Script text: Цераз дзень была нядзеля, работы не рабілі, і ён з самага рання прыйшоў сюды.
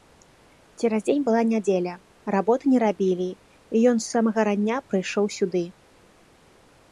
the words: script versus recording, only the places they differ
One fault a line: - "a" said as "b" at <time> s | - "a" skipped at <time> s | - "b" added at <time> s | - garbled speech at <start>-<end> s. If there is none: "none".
none